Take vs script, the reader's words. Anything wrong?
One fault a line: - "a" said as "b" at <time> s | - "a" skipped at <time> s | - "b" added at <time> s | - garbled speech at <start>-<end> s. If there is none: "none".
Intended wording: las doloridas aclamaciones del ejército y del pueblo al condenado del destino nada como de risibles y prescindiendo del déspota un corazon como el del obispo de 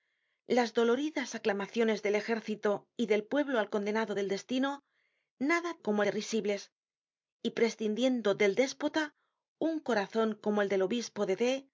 none